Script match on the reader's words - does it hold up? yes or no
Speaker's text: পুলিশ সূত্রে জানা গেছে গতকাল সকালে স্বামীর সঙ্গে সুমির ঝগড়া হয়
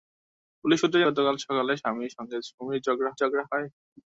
no